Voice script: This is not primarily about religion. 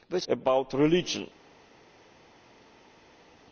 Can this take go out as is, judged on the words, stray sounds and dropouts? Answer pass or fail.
fail